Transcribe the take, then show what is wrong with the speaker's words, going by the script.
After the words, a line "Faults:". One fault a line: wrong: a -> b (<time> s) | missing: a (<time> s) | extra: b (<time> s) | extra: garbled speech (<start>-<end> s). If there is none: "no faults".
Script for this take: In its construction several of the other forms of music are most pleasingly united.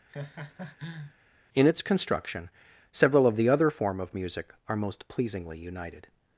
In its construction several of the other form of music are most pleasingly united.
Faults:
wrong: forms -> form (3.7 s)